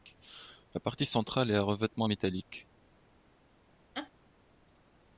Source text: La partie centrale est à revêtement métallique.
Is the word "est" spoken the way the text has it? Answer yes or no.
yes